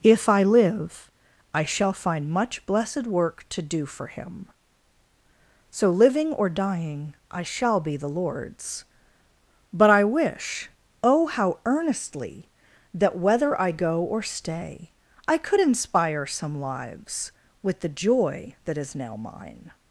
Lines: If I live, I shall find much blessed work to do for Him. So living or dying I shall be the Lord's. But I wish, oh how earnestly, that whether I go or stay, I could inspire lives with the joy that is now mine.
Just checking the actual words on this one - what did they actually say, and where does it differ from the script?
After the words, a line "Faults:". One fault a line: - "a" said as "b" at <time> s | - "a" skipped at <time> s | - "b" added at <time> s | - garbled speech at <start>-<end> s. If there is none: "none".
If I live, I shall find much blessed work to do for Him. So living or dying I shall be the Lord's. But I wish, oh how earnestly, that whether I go or stay, I could inspire some lives with the joy that is now mine.
Faults:
- "some" added at 16.2 s